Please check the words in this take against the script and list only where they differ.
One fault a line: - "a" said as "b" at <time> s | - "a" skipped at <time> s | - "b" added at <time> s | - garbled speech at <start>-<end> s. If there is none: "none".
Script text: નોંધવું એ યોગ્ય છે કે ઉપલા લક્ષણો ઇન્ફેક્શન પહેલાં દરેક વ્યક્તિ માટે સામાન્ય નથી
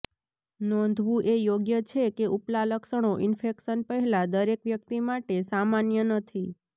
none